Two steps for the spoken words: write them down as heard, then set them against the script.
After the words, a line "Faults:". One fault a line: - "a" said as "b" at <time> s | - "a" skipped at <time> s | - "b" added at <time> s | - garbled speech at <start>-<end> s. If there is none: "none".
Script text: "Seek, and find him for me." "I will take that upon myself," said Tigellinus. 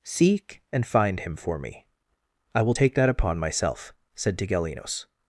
"Seek, and find him for me." "I will take that upon myself," said Tigellinus.
Faults:
none